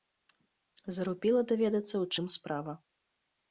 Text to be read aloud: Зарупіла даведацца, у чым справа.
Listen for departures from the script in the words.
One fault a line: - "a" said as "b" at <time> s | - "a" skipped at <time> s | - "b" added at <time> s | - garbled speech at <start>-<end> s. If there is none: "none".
none